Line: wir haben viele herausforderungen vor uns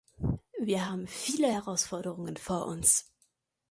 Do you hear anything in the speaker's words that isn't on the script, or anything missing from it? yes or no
no